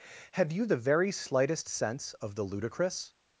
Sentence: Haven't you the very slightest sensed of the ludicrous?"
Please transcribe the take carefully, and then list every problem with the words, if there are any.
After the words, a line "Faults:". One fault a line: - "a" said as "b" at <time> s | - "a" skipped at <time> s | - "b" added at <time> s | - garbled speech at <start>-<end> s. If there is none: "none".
Have you the very slightest sense of the ludicrous?"
Faults:
- "Haven't" said as "Have" at 0.3 s
- "sensed" said as "sense" at 1.7 s